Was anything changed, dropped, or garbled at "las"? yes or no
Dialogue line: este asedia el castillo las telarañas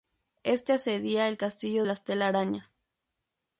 no